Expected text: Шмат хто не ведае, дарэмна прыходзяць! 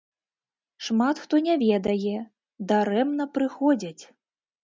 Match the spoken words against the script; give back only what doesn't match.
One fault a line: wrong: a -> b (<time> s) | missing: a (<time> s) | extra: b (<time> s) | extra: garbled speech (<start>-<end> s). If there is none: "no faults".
no faults